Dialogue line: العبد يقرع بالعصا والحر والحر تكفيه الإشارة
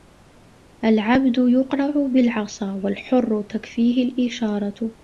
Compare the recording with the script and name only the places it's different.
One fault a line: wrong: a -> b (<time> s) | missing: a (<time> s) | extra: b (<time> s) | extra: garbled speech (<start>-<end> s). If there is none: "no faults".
missing: والحر (3.4 s)